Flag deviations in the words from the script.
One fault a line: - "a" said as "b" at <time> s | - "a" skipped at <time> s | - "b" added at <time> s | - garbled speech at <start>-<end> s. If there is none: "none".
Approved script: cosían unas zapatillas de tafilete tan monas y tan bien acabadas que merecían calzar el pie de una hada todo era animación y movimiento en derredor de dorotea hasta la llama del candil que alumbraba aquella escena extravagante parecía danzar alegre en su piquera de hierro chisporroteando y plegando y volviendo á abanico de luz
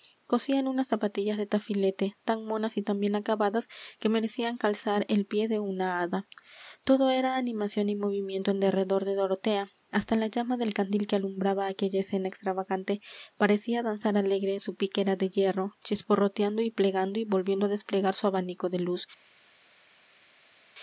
- "desplegar su" added at 17.7 s